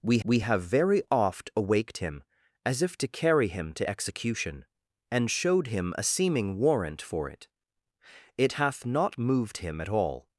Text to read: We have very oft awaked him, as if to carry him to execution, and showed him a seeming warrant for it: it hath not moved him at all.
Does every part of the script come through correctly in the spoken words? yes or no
no